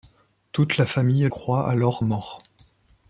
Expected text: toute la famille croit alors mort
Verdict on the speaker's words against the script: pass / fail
pass